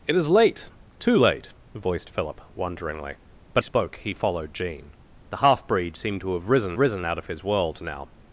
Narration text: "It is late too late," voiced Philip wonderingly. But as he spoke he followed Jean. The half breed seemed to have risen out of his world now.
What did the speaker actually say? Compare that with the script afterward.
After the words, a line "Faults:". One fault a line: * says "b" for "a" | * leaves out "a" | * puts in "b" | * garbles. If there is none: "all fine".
"It is late too late," voiced Philip wonderingly. But spoke he followed Jean. The half breed seemed to have risen risen out of his world now.
Faults:
* leaves out "as he"
* puts in "risen"